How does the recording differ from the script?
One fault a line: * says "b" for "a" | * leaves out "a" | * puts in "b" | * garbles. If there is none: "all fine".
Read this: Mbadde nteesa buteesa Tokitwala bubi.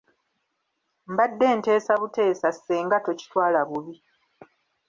* puts in "Ssenga"